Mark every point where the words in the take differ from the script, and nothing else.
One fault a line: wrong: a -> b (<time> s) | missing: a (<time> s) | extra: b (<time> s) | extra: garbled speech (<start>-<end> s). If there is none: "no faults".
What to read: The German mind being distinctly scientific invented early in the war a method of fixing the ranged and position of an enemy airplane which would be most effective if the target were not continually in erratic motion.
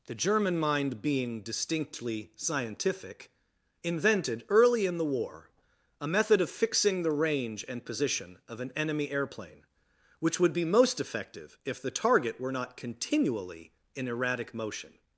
wrong: ranged -> range (7.1 s)